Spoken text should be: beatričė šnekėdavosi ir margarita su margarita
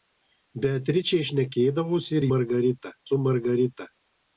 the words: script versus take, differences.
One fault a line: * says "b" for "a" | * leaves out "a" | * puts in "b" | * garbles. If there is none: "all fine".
all fine